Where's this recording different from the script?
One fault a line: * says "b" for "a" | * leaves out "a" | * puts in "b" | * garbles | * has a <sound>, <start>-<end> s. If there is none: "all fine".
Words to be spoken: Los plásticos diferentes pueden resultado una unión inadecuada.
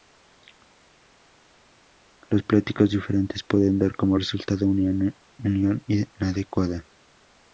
* puts in "dar como"